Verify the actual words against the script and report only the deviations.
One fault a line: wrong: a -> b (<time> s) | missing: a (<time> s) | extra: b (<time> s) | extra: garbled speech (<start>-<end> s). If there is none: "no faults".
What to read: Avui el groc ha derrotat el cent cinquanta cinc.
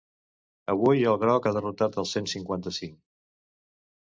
no faults